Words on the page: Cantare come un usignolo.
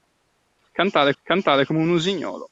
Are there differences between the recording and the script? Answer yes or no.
yes